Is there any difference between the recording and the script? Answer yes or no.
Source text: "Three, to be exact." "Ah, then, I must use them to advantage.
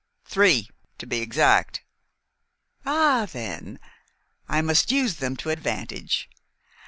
no